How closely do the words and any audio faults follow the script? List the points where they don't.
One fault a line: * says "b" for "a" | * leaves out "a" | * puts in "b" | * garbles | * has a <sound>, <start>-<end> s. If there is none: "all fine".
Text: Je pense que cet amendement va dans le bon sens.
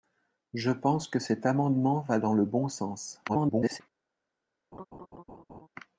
* garbles
* has a laugh, 4.7-5.7 s